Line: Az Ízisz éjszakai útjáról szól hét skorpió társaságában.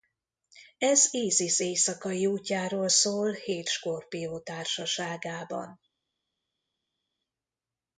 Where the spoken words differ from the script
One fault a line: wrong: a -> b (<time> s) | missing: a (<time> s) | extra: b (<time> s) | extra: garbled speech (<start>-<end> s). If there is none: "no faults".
wrong: Az -> Ez (0.8 s)